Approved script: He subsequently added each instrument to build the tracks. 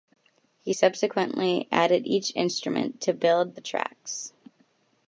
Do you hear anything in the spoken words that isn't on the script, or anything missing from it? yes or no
no